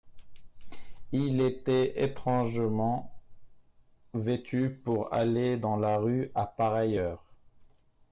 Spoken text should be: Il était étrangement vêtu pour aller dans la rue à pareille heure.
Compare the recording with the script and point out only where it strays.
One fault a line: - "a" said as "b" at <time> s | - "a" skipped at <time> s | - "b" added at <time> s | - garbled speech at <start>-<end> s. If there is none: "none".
none